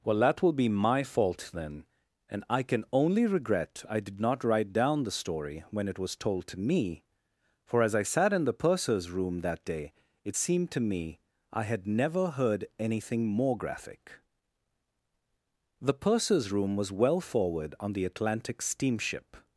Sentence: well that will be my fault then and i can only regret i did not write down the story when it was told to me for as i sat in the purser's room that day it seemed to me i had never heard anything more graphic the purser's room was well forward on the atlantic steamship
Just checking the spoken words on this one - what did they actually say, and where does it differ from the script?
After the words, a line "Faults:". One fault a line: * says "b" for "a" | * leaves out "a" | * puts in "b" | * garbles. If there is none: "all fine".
well that will be my fault then and i can only regret i did not write down the story when it was told to me for as i sat in the purser's room that day it seemed to me i had never heard anything more graphic the purser's room was well forward on the atlantic steamship
Faults:
all fine